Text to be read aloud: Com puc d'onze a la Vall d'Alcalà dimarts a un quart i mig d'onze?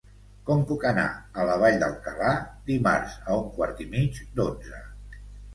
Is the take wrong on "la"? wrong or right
right